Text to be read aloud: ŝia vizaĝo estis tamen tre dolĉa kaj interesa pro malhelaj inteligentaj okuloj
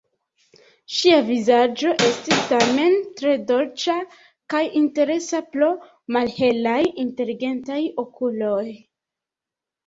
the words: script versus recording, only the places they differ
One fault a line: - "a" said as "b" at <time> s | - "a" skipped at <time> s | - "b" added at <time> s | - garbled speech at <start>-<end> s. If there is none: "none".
none